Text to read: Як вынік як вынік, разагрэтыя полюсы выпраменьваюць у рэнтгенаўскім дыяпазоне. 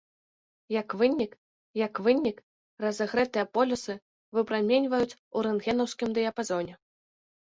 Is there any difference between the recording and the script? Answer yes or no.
no